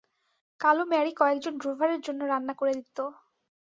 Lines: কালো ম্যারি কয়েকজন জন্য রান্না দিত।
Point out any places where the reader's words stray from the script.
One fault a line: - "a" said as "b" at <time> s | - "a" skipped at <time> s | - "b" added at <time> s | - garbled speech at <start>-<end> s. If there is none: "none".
- "ড্রোভারের" added at 1.6 s
- "করে" added at 2.6 s